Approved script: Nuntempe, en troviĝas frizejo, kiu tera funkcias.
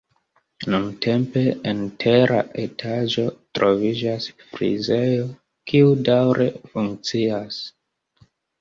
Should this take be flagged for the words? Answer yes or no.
yes